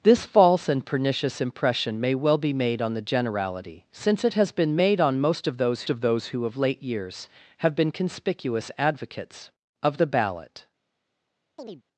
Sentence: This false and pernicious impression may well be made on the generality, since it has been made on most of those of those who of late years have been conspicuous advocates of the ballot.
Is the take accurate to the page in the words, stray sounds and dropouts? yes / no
no